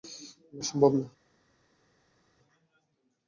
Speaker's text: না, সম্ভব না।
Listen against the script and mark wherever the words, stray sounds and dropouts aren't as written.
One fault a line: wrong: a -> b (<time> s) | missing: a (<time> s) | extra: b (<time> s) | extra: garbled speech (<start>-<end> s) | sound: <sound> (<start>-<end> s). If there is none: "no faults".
no faults